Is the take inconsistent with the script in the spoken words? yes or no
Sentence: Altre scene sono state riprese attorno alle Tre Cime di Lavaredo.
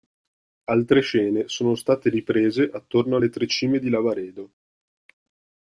no